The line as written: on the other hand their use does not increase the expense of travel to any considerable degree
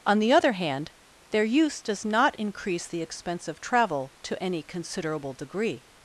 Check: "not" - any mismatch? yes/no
no